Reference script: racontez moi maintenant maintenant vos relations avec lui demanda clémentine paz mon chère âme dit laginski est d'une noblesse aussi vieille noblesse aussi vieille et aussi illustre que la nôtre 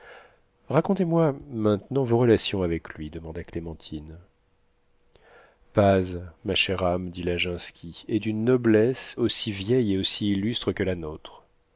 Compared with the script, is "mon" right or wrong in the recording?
wrong